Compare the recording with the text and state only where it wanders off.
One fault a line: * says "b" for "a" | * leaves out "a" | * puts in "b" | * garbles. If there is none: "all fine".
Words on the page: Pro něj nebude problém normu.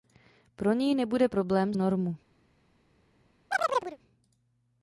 all fine